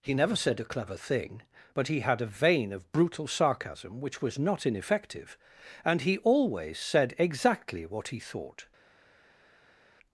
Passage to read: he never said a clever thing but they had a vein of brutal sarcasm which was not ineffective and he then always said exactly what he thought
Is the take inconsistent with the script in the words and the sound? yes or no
yes